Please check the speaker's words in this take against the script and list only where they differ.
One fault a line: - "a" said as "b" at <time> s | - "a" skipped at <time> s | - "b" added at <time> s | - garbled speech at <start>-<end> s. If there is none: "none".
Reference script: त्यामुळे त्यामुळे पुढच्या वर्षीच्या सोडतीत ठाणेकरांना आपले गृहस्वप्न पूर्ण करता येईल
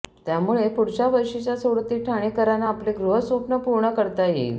- "त्यामुळे" skipped at 0.7 s